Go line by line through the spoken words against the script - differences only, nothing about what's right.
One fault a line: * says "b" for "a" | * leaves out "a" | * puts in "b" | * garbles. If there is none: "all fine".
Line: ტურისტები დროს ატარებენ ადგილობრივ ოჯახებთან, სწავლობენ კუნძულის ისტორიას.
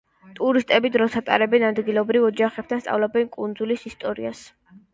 all fine